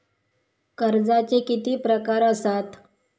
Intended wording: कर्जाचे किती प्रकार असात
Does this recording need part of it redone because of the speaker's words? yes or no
no